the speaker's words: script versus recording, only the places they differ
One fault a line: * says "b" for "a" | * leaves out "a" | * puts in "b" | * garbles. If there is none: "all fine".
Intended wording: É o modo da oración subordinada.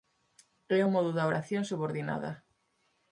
all fine